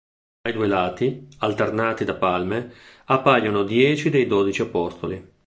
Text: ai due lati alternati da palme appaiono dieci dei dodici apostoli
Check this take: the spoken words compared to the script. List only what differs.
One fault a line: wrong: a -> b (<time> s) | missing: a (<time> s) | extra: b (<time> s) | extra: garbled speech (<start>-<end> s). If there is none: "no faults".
no faults